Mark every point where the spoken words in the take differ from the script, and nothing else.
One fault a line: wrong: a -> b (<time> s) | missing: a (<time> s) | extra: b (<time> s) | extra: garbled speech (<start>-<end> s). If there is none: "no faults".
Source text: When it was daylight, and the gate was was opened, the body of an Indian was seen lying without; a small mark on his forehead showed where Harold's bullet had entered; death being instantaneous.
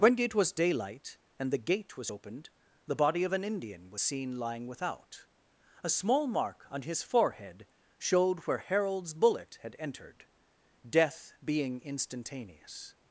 missing: was (2.1 s)